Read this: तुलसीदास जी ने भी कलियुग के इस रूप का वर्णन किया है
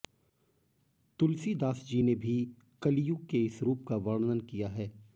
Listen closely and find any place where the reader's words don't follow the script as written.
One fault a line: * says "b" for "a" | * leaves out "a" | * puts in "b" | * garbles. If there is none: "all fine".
all fine